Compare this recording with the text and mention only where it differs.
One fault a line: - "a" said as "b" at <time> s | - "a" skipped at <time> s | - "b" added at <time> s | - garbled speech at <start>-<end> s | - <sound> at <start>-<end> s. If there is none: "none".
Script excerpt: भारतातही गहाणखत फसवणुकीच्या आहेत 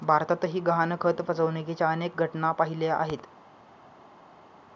- "अनेक घटना पाहिल्या" added at 1.9 s